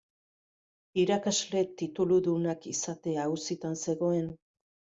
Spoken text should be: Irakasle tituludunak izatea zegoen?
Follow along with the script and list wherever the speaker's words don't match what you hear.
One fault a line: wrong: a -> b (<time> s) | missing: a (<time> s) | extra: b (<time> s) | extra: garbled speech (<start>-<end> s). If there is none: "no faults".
extra: auzitan (3.3 s)